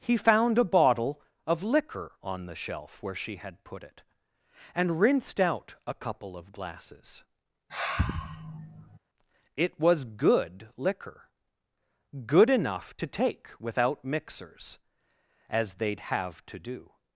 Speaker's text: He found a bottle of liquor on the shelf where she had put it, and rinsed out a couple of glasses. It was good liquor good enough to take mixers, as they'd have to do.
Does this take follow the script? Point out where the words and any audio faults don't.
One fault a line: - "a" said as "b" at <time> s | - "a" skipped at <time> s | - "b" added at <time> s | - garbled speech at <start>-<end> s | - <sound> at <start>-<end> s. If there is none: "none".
- sigh at 7.7-9.0 s
- "without" added at 13.6 s